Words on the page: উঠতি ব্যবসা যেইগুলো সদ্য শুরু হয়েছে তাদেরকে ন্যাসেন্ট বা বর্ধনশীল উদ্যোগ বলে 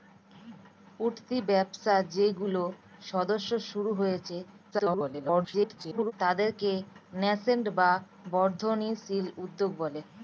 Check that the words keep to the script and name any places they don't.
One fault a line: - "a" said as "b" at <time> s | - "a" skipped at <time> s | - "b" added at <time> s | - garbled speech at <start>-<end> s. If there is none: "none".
- garbled speech at 4.7-6.1 s